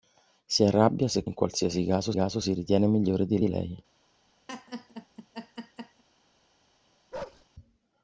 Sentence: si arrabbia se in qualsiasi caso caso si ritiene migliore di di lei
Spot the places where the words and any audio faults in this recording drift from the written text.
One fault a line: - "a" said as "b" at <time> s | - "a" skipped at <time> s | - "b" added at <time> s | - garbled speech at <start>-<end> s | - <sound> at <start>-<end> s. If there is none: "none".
- laugh at 4.5-6.0 s
- bark at 7.1-7.5 s